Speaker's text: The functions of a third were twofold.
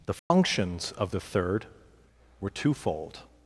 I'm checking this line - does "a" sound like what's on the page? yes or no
no